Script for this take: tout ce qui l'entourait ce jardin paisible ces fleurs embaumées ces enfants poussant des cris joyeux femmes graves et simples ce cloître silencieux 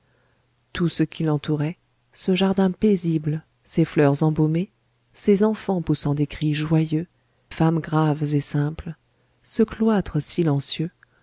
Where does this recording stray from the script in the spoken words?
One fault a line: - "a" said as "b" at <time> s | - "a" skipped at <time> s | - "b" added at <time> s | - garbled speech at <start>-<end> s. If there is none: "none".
none